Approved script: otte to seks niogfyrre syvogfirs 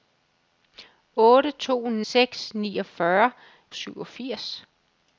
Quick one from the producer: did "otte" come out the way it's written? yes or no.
yes